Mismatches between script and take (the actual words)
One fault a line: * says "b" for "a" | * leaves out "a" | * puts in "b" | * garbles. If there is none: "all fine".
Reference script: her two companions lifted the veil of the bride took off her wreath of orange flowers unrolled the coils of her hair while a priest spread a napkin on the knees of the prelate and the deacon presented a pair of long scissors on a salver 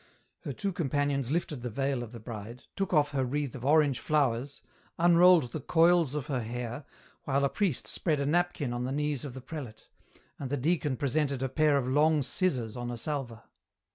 all fine